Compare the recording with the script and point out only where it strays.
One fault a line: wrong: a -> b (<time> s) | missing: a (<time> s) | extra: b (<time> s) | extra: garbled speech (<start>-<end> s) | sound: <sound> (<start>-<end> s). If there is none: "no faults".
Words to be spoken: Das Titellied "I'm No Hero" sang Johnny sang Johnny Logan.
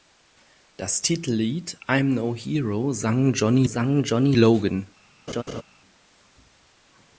sound: laugh (5.3-5.6 s)